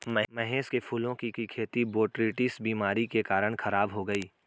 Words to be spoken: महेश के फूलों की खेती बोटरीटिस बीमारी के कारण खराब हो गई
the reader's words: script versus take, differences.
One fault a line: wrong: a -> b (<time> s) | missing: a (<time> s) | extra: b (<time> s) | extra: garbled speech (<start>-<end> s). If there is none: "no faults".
extra: की (1.3 s)